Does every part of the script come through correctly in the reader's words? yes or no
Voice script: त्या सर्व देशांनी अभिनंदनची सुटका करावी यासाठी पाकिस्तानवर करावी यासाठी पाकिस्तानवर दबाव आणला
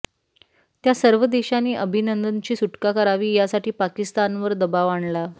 no